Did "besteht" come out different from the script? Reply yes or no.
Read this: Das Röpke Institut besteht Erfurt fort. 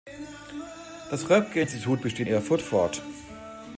no